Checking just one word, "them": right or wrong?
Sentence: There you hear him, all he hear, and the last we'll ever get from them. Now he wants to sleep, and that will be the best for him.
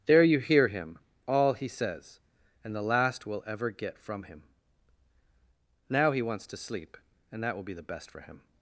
wrong